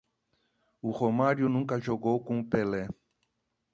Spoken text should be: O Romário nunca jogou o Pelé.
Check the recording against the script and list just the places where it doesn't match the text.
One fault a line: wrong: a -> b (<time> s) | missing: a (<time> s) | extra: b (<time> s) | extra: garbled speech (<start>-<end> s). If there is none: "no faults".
extra: com (2.2 s)